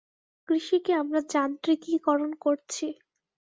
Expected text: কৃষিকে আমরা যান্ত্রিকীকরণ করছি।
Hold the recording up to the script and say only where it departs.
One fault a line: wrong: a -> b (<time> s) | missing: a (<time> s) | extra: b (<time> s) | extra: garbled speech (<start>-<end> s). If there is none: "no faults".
no faults